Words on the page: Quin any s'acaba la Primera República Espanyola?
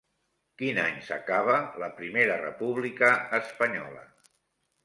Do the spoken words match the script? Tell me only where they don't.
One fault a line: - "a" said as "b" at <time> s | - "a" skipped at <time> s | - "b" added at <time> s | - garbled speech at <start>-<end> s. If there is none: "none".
none